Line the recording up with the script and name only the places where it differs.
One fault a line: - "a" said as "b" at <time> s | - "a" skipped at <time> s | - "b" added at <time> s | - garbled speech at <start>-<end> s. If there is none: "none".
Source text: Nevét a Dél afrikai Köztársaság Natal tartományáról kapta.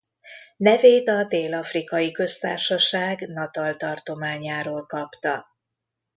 none